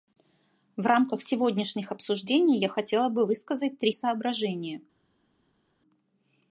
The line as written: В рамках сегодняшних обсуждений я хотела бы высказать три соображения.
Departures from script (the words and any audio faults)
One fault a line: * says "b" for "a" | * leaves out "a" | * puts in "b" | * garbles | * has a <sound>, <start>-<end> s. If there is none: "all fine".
all fine